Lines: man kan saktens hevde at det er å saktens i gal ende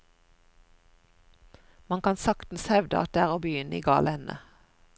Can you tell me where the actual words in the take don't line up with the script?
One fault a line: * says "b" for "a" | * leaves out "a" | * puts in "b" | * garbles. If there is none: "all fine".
* says "begynne" for "saktens"